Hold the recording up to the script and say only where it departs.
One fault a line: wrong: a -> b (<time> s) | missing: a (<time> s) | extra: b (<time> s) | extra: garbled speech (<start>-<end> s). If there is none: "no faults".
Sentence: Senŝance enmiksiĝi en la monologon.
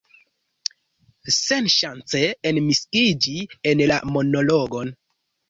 no faults